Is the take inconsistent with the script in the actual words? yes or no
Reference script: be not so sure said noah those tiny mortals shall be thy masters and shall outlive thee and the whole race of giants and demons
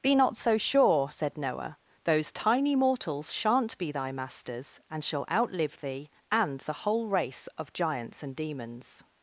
yes